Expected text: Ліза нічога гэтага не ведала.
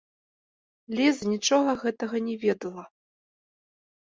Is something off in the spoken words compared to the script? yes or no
no